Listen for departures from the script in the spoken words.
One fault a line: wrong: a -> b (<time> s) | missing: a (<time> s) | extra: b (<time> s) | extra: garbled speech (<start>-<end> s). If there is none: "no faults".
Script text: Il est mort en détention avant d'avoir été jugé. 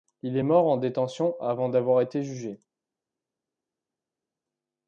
no faults